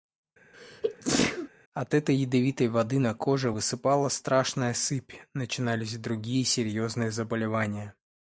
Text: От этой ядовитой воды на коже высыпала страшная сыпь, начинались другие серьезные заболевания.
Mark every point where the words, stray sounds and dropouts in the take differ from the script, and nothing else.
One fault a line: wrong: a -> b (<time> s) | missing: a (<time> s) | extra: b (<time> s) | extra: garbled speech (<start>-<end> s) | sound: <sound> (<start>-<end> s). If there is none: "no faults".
sound: sneeze (0.5-1.5 s)